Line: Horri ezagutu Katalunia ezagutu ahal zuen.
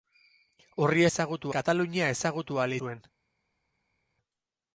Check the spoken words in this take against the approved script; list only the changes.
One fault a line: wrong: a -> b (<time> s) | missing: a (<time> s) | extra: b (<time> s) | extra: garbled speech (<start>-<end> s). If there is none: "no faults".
no faults